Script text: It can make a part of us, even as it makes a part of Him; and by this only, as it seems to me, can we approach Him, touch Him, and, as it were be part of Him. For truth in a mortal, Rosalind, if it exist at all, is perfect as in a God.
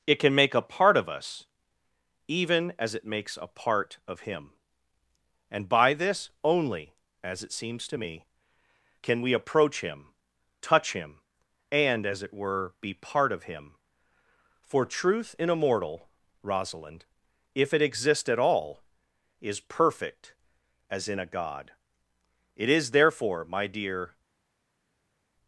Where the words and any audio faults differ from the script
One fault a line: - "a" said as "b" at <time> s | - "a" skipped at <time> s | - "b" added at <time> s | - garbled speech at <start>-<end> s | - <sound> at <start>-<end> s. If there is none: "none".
- "It is therefore my dear" added at 22.6 s